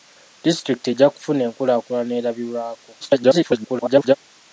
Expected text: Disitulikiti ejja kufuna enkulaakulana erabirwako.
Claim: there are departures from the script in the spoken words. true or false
true